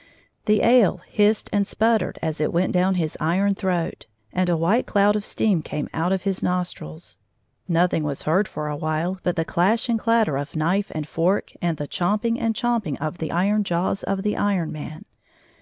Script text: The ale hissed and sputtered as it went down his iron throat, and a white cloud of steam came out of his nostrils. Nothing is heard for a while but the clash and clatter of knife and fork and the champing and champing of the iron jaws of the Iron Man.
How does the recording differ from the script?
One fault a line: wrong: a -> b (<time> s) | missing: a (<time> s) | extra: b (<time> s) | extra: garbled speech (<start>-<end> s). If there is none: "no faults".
wrong: is -> was (8.0 s)